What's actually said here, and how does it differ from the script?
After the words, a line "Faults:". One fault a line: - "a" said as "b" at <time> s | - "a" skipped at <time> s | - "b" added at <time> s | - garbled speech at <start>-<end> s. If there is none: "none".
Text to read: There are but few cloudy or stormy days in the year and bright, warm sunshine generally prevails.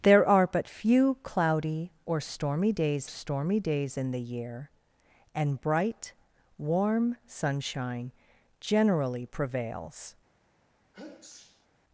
There are but few cloudy or stormy days stormy days in the year and bright, warm sunshine generally prevails.
Faults:
- "stormy days" added at 3.1 s